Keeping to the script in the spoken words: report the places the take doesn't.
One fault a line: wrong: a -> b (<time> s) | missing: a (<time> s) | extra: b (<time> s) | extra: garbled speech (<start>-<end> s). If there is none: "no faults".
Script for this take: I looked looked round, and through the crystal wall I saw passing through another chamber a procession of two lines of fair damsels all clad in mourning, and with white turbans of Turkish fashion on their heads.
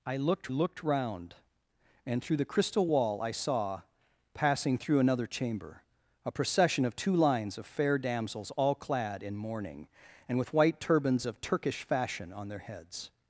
no faults